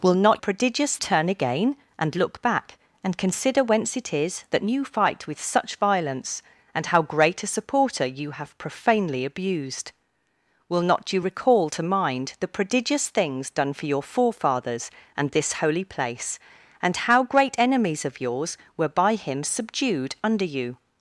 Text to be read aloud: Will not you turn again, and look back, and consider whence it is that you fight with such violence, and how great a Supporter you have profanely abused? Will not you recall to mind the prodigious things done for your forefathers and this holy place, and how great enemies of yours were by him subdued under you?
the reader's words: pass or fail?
fail